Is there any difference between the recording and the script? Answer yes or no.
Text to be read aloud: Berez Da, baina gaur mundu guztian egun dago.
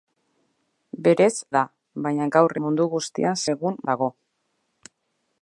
no